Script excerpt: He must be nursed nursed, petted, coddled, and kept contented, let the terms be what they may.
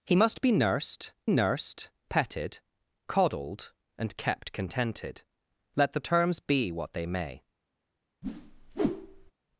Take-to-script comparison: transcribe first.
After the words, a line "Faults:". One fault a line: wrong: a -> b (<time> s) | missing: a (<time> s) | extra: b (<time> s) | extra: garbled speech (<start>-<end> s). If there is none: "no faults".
He must be nursed nursed, petted, coddled, and kept contented, let the terms be what they may.
Faults:
no faults